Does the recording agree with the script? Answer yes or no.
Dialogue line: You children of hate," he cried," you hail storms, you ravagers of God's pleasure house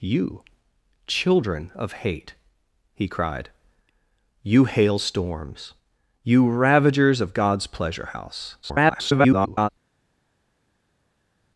no